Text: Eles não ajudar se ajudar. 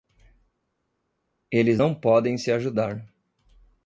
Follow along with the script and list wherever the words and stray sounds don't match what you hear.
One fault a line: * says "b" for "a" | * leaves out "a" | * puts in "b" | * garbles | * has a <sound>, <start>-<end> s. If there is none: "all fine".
* says "podem" for "ajudar"